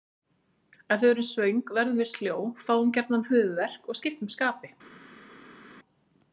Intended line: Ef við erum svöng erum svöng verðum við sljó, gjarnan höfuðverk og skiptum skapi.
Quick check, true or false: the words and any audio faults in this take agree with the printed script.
false